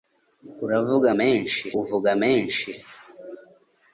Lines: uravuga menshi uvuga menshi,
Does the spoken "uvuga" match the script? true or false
true